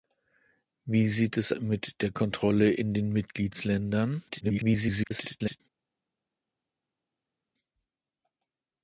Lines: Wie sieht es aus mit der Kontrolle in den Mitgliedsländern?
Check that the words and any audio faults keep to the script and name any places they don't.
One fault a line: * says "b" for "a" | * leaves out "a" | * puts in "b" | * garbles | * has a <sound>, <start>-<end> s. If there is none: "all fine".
* leaves out "aus"
* garbles